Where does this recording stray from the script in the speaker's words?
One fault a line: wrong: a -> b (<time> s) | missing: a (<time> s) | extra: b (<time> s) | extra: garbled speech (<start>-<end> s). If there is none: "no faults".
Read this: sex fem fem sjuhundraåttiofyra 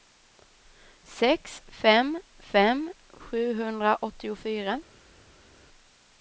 no faults